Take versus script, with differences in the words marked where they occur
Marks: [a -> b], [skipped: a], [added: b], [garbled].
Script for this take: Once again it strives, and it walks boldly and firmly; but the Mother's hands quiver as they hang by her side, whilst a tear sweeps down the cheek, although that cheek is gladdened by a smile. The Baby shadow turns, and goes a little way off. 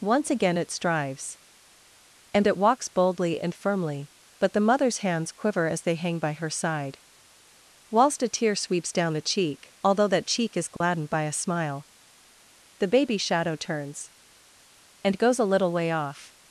Once again it strives, and it walks boldly and firmly; but the Mother's hands quiver as they hang by her side, whilst a tear sweeps down the cheek, although that cheek is gladdened by a smile. The Baby shadow turns, and goes a little way off.